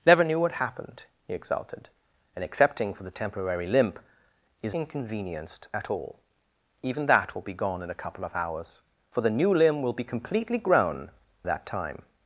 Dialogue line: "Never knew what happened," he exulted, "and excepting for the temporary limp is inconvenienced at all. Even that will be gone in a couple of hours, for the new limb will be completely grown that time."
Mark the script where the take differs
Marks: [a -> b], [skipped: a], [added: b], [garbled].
"Never knew what happened," he exulted, "and excepting for the temporary limp is inconvenienced at all. Even that will be gone in a couple of hours, for the new limb will be completely grown that time."